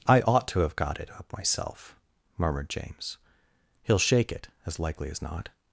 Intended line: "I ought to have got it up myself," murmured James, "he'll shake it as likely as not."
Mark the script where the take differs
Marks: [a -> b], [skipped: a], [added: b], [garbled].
"I ought to have got it up myself," murmured James, "he'll shake it as likely as not."